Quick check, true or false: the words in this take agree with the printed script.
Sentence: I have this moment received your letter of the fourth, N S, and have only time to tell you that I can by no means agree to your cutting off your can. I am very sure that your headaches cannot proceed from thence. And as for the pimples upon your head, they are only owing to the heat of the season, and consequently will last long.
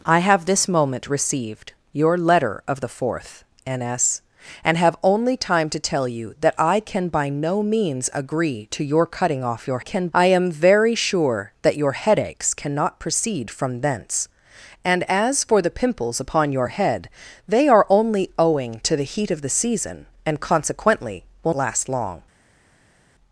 true